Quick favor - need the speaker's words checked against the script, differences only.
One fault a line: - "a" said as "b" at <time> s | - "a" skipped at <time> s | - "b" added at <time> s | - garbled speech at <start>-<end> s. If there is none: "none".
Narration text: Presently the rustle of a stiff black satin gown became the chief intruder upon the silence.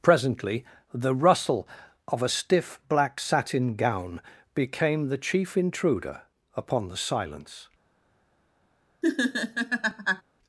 none